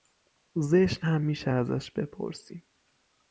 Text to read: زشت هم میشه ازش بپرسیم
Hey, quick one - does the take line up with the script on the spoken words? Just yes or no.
yes